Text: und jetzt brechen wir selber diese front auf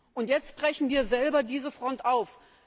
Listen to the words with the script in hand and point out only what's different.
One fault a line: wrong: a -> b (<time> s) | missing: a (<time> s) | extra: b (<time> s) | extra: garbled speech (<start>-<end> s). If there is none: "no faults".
no faults